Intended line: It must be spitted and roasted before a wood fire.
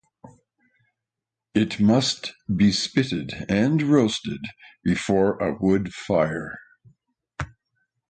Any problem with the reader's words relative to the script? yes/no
no